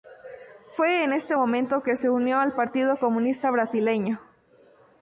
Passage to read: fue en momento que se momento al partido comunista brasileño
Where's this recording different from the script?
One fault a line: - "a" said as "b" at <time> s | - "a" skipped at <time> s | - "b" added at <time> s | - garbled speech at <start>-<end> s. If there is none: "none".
- "este" added at 1.1 s
- "momento" said as "unió" at 2.1 s